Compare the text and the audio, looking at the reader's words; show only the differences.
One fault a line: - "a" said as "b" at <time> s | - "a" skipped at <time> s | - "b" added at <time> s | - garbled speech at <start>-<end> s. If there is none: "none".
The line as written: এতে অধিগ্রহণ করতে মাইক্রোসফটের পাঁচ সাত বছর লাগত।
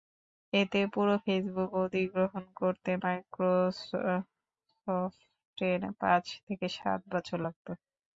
- "পুরো ফেসবুক" added at 0.9 s
- "থেকে" added at 6.5 s